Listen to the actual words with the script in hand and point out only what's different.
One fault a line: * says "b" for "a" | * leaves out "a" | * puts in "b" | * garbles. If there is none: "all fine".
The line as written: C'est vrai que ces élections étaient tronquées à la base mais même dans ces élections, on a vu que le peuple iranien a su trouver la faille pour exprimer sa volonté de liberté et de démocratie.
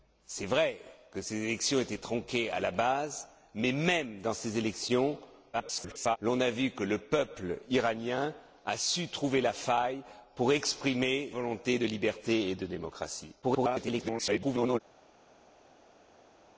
* garbles
* leaves out "sa"
* garbles